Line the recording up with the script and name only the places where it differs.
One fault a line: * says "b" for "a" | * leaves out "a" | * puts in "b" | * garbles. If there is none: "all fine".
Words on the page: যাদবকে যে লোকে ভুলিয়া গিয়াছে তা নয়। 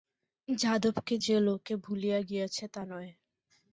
all fine